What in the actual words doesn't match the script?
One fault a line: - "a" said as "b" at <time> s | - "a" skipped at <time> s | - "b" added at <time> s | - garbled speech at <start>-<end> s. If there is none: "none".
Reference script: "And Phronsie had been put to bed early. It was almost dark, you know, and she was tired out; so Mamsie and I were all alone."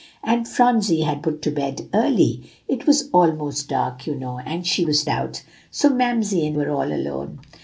- "been" skipped at 1.2 s
- "tired" skipped at 5.0 s
- "I" skipped at 6.6 s